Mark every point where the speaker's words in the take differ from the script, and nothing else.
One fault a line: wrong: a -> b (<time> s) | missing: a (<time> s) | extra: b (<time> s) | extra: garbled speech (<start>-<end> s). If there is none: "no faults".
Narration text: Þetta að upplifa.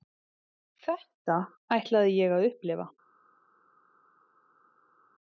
extra: ætlaði ég (1.8 s)